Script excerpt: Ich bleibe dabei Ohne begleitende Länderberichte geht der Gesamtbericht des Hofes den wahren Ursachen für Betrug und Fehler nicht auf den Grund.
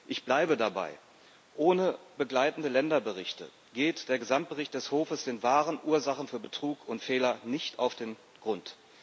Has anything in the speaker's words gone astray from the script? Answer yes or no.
no